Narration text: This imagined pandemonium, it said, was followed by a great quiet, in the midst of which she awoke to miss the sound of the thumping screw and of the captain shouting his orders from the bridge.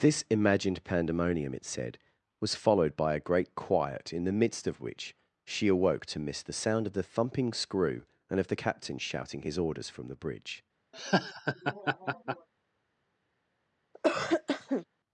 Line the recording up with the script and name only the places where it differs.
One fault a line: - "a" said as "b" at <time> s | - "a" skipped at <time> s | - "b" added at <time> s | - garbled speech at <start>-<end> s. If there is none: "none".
none